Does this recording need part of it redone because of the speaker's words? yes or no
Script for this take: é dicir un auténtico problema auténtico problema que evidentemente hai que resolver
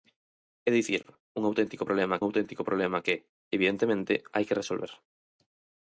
no